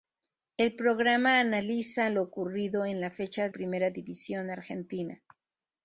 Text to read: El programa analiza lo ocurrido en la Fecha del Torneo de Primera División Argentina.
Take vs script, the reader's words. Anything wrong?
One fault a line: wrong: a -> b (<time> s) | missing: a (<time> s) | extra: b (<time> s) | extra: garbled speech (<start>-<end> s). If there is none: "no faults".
missing: del Torneo de (3.5 s)